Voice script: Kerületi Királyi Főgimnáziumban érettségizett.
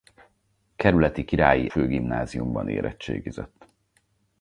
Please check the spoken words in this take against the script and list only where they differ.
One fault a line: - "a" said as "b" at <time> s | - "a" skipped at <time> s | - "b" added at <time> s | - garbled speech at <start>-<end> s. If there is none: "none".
none